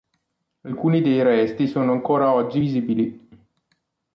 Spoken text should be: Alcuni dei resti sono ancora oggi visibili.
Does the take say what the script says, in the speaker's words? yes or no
yes